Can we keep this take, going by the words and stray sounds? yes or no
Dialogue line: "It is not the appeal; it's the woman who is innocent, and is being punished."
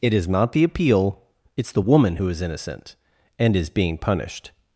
yes